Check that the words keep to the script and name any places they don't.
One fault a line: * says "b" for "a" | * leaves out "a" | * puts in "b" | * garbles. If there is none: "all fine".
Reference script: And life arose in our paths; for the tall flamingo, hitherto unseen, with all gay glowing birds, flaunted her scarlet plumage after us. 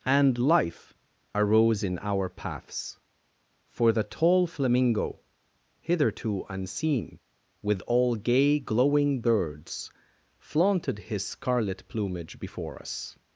* says "his" for "her"
* says "before" for "after"